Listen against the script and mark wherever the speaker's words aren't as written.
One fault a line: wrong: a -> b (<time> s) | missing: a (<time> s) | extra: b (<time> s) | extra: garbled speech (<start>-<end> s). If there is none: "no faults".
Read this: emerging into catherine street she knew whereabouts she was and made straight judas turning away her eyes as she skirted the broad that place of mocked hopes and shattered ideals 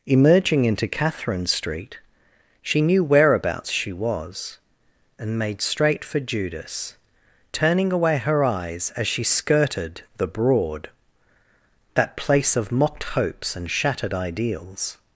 extra: for (6.0 s)